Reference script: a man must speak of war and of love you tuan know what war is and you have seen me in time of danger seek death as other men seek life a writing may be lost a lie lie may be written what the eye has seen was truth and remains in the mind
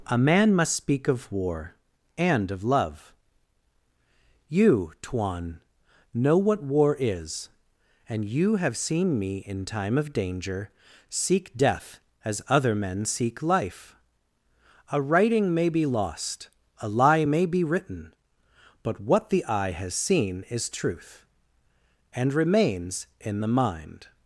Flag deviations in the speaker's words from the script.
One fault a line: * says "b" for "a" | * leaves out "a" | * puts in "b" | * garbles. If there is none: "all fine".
* leaves out "lie"
* puts in "but"
* says "is" for "was"